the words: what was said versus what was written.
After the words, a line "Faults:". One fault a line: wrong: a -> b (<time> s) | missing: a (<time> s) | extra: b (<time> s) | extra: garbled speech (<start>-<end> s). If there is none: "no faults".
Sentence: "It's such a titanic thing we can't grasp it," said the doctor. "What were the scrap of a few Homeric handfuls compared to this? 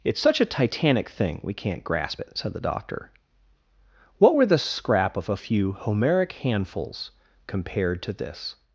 "It's such a titanic thing we can't grasp it," said the doctor. "What were the scrap of a few Homeric handfuls compared to this?
Faults:
no faults